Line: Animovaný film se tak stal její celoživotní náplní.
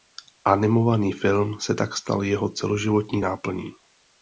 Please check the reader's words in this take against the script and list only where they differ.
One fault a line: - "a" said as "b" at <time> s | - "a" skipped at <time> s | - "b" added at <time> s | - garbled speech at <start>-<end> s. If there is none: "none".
- "její" said as "jeho" at 2.2 s